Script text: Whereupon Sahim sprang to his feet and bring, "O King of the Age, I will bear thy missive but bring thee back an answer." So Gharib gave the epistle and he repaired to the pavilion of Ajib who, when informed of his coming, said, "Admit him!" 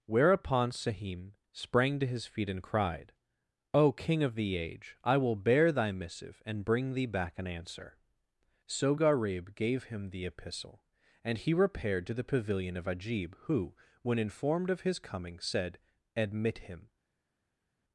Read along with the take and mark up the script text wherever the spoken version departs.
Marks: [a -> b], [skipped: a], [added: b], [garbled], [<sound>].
Whereupon Sahim sprang to his feet and [bring, -> cried] "O King of the Age, I will bear thy missive [but -> and] bring thee back an answer." So Gharib gave [added: him] the epistle and he repaired to the pavilion of Ajib who, when informed of his coming, said, "Admit him!"